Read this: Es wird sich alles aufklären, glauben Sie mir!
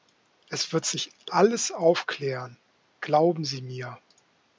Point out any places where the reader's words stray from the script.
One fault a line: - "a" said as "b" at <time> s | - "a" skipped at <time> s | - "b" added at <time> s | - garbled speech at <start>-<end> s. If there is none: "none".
none